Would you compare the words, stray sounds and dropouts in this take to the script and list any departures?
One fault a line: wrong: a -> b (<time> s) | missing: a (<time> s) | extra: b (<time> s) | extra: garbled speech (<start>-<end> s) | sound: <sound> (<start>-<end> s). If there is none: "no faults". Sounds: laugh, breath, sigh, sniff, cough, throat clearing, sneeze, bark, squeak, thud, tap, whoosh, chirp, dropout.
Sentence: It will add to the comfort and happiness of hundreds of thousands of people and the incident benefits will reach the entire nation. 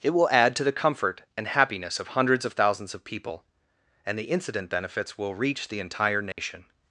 sound: dropout (6.3-6.4 s)